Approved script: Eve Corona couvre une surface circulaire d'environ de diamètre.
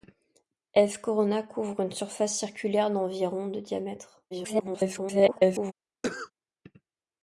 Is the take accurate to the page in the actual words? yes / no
no